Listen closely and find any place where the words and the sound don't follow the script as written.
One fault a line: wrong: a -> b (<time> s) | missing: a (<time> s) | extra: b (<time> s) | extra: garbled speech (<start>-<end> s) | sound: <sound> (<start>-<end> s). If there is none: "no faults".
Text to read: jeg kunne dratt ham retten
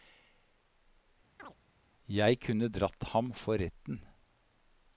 sound: chirp (1.4-1.6 s)
extra: for (3.3 s)